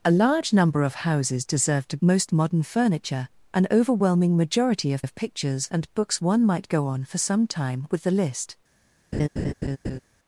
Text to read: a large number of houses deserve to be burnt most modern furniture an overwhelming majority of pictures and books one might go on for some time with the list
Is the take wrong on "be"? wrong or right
wrong